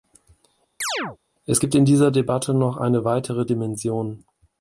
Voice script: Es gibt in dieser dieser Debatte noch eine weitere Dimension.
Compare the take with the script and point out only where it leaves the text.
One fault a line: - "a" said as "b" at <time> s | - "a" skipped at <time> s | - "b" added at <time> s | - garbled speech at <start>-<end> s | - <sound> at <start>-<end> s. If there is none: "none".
- chirp at 0.8-1.2 s
- "dieser" skipped at 2.1 s